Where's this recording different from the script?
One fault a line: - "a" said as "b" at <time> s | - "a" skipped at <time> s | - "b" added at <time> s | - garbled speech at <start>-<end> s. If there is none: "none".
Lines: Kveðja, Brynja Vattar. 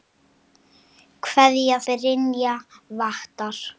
none